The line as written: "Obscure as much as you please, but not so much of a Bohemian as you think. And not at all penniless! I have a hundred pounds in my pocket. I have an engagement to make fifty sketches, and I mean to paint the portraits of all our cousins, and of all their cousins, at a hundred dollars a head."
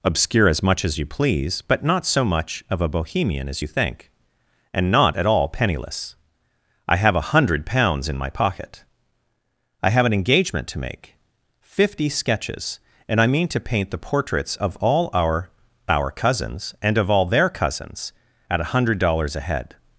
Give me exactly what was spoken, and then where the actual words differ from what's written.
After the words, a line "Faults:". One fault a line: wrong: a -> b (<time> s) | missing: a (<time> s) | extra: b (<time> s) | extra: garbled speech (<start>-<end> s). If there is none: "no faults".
"Obscure as much as you please, but not so much of a Bohemian as you think. And not at all penniless! I have a hundred pounds in my pocket. I have an engagement to make fifty sketches, and I mean to paint the portraits of all our our cousins, and of all their cousins, at a hundred dollars a head."
Faults:
extra: our (15.9 s)